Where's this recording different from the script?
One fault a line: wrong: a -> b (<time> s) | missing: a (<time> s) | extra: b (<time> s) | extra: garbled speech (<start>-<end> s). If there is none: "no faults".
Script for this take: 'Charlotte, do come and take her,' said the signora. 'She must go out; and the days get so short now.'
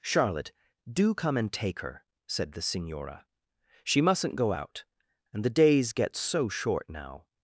wrong: must -> mustn't (4.0 s)